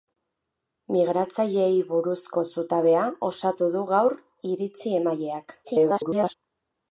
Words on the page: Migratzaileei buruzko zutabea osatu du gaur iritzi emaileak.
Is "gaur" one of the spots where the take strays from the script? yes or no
no